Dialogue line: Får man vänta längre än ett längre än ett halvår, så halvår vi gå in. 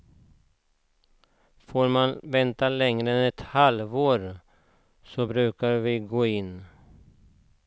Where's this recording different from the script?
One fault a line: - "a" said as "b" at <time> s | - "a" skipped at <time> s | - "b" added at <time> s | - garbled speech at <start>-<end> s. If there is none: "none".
- "längre än ett" skipped at 3.4 s
- "halvår" said as "brukar" at 5.2 s